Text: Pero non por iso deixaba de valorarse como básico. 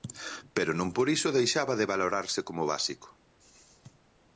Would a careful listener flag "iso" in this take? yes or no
no